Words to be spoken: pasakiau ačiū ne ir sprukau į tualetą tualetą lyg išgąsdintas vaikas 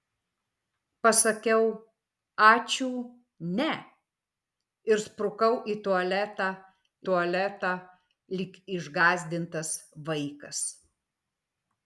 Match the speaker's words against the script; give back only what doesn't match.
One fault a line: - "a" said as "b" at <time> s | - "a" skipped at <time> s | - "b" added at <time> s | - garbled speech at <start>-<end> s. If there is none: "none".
none